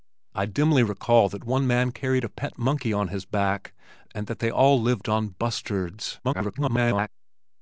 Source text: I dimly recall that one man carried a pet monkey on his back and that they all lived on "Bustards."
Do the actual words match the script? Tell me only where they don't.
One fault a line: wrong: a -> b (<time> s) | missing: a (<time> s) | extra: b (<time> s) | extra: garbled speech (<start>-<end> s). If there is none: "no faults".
extra: garbled speech (6.2-7.1 s)